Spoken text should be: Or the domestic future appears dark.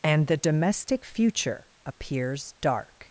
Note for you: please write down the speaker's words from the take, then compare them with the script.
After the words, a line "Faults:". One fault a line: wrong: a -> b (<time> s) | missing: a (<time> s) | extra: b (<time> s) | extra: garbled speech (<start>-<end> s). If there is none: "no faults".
And the domestic future appears dark.
Faults:
wrong: Or -> And (0.0 s)